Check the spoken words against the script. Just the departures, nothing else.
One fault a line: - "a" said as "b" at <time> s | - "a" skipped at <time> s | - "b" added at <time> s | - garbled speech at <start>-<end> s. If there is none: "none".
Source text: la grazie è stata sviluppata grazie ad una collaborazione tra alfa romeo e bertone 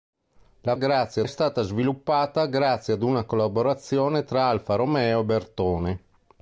none